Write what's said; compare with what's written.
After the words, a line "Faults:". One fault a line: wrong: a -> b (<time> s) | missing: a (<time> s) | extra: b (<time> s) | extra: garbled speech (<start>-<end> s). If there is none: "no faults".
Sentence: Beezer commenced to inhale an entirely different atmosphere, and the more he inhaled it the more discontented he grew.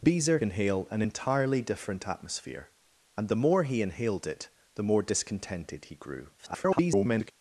Beezer inhale an entirely different atmosphere, and the more he inhaled it the more discontented he grew. [garbled]
Faults:
missing: commenced to (0.4 s)
extra: garbled speech (6.4-7.3 s)